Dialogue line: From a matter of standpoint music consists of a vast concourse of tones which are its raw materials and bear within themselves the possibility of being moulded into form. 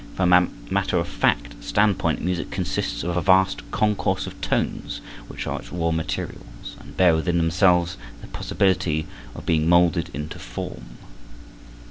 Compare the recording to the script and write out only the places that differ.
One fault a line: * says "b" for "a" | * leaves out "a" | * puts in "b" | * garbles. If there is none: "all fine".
* puts in "fact"